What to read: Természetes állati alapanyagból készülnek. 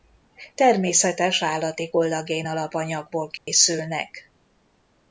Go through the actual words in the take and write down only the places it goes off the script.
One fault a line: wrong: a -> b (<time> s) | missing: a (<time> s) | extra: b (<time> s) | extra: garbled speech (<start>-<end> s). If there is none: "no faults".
extra: kollagén (1.9 s)